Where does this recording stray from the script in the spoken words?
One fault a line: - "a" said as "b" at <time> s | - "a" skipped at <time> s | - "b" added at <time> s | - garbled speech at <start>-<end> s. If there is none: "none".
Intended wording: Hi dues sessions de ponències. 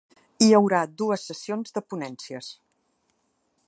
- "haurà" added at 0.6 s